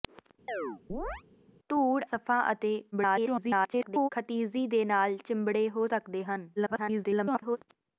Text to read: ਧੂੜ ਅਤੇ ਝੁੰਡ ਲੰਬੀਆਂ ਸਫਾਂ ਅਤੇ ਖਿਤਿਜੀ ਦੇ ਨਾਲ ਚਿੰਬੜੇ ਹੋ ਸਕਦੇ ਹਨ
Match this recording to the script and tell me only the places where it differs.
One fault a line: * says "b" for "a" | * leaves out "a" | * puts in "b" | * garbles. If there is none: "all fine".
* leaves out "ਅਤੇ ਝੁੰਡ ਲੰਬੀਆਂ"
* garbles
* garbles